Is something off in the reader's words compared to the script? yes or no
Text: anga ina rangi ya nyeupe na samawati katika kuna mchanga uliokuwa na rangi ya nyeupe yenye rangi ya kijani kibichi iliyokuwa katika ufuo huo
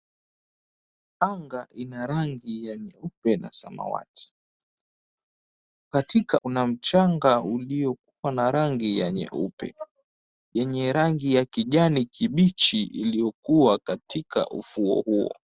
no